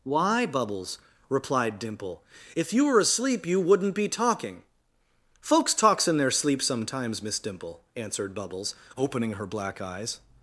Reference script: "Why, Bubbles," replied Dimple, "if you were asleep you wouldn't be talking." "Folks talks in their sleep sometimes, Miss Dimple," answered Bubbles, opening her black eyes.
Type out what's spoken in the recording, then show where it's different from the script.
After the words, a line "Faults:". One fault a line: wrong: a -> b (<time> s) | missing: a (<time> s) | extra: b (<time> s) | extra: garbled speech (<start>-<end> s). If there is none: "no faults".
"Why, Bubbles," replied Dimple, "if you were asleep you wouldn't be talking." "Folks talks in their sleep sometimes, Miss Dimple," answered Bubbles, opening her black eyes.
Faults:
no faults